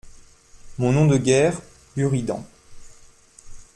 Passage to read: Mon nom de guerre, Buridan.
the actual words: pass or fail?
pass